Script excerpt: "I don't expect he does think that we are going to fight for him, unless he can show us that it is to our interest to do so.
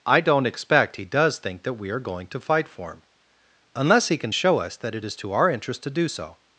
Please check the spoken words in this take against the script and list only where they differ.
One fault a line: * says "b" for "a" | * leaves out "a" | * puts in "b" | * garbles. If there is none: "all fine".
all fine